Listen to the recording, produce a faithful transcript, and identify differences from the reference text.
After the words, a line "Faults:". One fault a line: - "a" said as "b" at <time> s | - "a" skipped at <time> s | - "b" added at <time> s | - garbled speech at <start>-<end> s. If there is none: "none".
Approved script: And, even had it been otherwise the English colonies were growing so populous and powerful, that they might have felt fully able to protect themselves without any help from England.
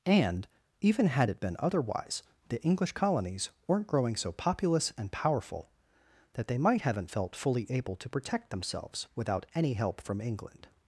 And, even had it been otherwise the English colonies weren't growing so populous and powerful, that they might haven't felt fully able to protect themselves without any help from England.
Faults:
- "were" said as "weren't" at 3.7 s
- "have" said as "haven't" at 6.8 s